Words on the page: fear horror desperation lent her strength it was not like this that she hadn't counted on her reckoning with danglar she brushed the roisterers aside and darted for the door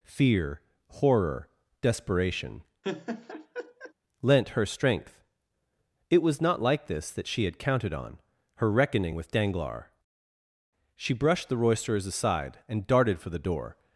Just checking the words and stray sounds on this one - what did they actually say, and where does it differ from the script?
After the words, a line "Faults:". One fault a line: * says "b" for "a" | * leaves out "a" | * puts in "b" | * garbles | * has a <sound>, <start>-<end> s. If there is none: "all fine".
fear horror desperation lent her strength it was not like this that she had counted on her reckoning with danglar she brushed the roisterers aside and darted for the door
Faults:
* has a laugh, 2.8-3.9 s
* says "had" for "hadn't"